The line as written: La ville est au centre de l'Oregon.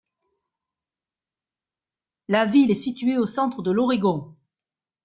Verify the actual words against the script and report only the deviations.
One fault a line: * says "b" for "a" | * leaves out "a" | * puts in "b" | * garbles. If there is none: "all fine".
* puts in "située"